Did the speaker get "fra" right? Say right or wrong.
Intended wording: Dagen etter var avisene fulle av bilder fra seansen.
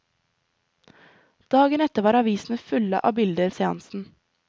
wrong